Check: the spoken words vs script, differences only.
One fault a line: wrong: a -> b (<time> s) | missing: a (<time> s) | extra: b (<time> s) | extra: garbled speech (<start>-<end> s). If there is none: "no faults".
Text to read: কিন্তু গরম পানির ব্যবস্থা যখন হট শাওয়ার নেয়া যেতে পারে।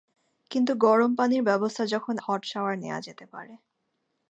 no faults